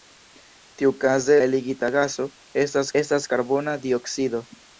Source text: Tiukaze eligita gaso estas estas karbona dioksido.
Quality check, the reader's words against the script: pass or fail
pass